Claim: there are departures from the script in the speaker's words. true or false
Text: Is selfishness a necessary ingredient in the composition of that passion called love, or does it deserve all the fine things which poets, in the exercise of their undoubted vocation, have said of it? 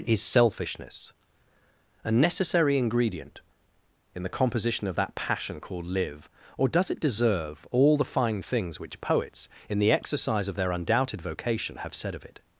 true